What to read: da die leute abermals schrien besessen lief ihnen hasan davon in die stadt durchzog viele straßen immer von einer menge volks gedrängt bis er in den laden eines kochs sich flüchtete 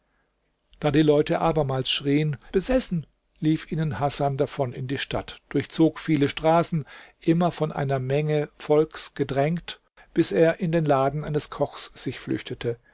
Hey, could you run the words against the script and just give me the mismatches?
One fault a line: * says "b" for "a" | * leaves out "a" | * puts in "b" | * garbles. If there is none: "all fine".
all fine